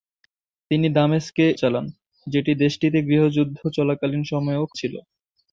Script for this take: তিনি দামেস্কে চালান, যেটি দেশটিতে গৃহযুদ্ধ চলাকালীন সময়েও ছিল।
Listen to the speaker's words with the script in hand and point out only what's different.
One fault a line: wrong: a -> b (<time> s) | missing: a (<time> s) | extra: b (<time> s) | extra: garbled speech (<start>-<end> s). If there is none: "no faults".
no faults